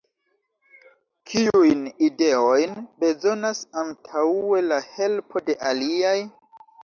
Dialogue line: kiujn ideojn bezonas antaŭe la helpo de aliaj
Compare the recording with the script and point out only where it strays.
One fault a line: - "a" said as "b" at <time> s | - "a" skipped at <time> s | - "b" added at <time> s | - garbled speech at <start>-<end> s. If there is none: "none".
none